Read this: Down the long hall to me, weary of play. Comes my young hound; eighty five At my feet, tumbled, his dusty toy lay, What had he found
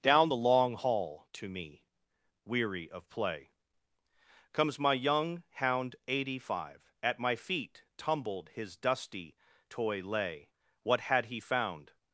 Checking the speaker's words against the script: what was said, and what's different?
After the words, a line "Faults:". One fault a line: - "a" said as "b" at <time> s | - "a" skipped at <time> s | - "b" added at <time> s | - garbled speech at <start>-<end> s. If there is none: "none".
Down the long hall to me, weary of play. Comes my young hound; eighty five At my feet, tumbled, his dusty toy lay, What had he found
Faults:
none